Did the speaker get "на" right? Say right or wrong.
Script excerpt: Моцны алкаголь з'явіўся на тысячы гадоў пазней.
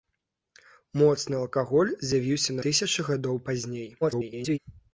wrong